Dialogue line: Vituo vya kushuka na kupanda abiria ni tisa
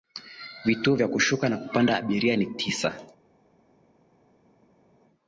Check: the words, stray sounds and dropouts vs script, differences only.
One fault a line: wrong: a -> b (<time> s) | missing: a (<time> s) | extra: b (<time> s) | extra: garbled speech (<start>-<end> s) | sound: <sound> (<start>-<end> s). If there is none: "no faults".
no faults